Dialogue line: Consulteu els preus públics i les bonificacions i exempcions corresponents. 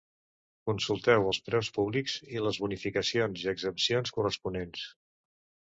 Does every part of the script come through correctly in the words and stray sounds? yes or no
yes